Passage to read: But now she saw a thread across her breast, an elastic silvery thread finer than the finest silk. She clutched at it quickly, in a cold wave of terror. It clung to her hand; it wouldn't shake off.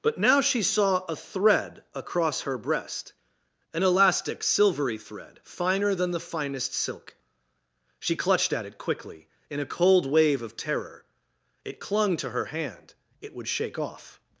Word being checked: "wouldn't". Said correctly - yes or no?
no